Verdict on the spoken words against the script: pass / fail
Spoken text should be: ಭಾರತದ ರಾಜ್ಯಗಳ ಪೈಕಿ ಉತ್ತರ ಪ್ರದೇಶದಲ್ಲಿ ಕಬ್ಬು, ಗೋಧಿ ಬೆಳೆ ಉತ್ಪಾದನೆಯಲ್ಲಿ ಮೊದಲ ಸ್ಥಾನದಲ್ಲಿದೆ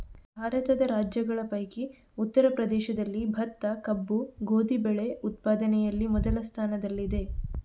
fail